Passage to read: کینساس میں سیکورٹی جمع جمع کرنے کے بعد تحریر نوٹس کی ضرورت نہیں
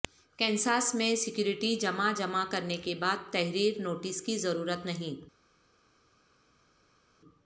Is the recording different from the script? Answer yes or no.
no